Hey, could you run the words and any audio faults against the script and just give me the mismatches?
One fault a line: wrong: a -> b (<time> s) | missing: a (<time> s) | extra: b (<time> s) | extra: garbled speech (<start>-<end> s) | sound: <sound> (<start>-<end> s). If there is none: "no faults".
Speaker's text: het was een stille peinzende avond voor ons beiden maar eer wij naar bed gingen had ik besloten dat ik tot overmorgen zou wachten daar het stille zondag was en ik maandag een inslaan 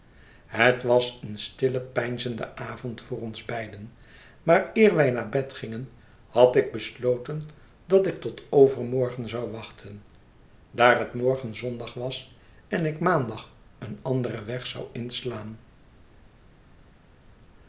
wrong: stille -> morgen (11.1 s)
extra: anderen weg zou (14.0 s)